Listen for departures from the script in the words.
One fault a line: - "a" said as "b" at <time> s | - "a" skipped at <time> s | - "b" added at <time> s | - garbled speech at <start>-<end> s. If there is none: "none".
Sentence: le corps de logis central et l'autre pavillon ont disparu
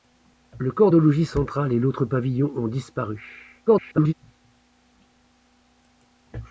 - garbled speech at 3.7-4.1 s